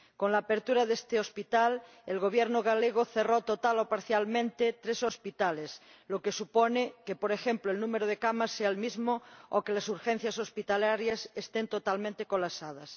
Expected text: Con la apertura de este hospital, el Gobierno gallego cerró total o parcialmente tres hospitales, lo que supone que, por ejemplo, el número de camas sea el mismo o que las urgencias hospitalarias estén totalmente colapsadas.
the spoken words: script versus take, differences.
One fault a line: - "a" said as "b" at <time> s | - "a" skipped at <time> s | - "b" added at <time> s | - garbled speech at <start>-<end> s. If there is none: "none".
none